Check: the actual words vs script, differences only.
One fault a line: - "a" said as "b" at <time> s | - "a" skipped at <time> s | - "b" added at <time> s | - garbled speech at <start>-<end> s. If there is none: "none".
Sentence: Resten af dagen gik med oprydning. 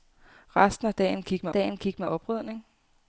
- "dagen gik med" added at 1.5 s